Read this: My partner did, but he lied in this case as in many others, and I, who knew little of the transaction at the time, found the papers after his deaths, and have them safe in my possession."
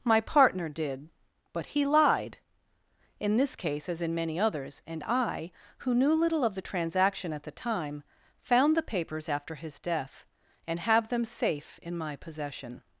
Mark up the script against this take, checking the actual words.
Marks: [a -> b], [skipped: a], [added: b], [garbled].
My partner did, but he lied in this case as in many others, and I, who knew little of the transaction at the time, found the papers after his [deaths, -> death] and have them safe in my possession."